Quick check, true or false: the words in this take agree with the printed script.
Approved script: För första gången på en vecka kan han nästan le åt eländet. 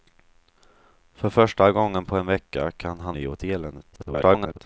false